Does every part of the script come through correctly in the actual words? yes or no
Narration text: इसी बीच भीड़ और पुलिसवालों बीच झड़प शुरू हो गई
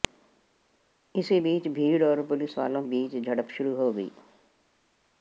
yes